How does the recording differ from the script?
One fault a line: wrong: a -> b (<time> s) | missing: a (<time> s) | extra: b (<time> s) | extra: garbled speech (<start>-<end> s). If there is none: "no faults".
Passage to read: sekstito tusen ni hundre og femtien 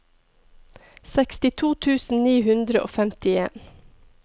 no faults